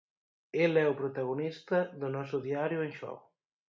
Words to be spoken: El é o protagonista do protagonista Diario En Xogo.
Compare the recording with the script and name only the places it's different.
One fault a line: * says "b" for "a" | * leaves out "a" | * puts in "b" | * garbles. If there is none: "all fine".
* says "noso" for "protagonista"